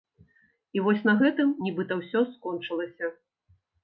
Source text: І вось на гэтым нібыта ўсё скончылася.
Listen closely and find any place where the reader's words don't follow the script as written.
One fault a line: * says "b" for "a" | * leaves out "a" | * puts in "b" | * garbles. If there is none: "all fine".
all fine